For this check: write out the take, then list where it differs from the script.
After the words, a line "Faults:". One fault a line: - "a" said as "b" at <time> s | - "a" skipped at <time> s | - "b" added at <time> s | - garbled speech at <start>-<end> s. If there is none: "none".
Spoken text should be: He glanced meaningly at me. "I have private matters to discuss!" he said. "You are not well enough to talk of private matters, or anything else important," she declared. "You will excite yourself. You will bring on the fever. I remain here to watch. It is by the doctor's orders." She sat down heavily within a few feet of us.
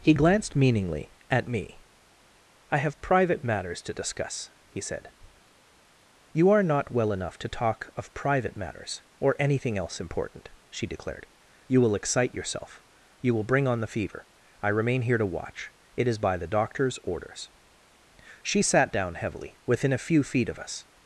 He glanced meaningly at me. "I have private matters to discuss!" he said. "You are not well enough to talk of private matters, or anything else important," she declared. "You will excite yourself. You will bring on the fever. I remain here to watch. It is by the doctor's orders." She sat down heavily within a few feet of us.
Faults:
none